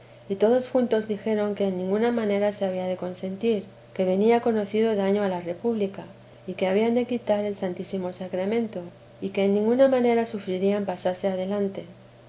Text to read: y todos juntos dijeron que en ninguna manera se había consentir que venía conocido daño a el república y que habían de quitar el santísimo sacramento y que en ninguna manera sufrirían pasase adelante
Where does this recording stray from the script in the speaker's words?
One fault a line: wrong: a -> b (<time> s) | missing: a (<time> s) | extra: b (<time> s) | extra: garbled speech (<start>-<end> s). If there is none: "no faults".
extra: de (2.9 s)
wrong: el -> la (5.3 s)